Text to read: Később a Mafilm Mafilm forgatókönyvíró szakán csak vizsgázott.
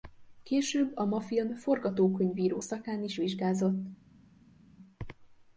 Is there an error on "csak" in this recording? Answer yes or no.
yes